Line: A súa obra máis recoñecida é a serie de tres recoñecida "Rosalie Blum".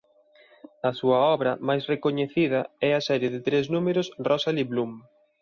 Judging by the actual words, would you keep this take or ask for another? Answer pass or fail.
fail